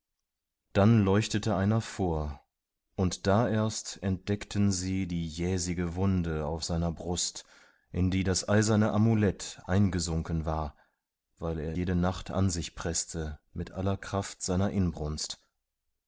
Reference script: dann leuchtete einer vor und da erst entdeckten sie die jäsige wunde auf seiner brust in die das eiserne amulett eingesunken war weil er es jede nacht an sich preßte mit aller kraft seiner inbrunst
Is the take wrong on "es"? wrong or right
wrong